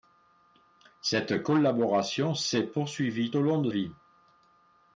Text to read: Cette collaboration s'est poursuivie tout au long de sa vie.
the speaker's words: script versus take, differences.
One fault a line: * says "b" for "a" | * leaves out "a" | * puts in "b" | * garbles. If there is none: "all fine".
* leaves out "tout"
* leaves out "sa"